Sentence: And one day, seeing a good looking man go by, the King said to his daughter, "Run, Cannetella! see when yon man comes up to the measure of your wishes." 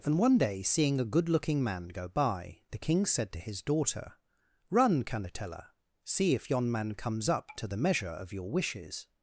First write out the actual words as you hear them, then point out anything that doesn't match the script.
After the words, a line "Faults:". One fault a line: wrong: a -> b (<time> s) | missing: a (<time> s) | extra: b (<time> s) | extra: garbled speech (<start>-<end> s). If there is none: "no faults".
And one day, seeing a good looking man go by, the King said to his daughter, "Run, Cannetella! see if yon man comes up to the measure of your wishes."
Faults:
wrong: when -> if (6.3 s)